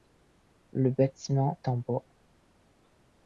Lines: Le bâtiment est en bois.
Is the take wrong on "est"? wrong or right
wrong